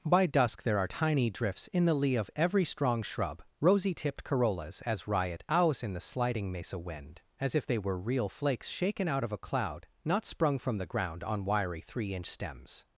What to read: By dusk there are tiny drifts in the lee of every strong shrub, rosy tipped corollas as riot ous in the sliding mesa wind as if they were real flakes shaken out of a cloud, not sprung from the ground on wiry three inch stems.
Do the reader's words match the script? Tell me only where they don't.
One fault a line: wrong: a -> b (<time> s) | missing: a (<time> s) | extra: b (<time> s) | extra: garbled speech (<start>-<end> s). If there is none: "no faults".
wrong: ous -> owls (5.5 s)